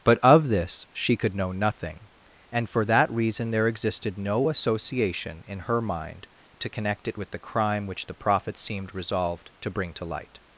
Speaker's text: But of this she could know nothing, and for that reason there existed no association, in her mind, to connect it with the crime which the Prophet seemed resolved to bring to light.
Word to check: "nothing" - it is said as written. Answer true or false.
true